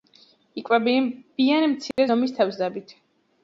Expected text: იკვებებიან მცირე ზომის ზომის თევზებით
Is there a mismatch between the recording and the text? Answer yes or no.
yes